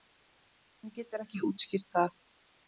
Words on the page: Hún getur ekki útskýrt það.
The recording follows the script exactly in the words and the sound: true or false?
true